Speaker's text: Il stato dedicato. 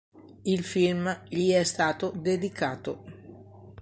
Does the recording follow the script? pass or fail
fail